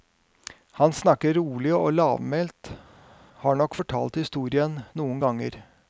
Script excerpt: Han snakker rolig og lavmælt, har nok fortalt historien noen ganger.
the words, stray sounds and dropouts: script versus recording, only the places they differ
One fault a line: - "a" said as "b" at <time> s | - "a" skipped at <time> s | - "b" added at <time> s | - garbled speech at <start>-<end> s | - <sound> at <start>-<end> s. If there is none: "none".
none